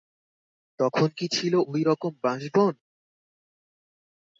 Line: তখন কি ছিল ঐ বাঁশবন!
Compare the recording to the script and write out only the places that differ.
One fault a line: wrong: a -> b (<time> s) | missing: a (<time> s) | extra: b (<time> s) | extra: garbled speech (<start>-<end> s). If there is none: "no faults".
extra: রকম (1.9 s)